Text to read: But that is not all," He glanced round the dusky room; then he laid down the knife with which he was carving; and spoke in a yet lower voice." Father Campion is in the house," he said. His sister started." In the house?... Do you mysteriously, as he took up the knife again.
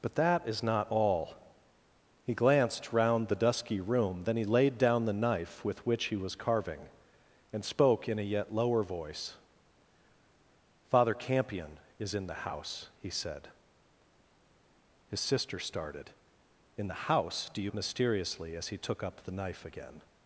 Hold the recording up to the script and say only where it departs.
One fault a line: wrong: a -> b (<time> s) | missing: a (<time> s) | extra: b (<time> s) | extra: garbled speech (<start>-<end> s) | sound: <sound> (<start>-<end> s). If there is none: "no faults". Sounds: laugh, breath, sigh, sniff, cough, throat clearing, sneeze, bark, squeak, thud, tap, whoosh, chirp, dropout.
no faults